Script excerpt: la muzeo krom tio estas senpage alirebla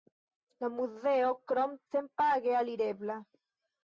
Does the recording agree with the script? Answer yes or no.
no